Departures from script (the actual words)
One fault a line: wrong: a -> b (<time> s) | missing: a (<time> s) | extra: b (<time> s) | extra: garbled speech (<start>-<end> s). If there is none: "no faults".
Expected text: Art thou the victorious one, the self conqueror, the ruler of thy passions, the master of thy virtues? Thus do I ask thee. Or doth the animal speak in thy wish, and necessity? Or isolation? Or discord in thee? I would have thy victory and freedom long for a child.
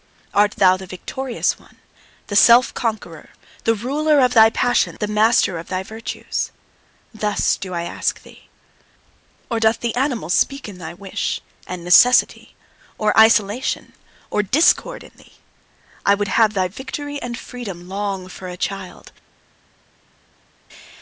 no faults